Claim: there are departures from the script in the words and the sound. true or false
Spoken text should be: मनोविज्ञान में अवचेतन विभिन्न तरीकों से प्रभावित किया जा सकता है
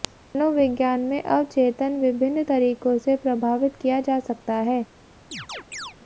true